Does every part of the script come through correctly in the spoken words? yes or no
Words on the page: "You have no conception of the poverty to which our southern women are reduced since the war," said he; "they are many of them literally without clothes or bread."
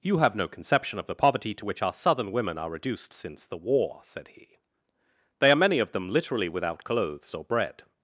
yes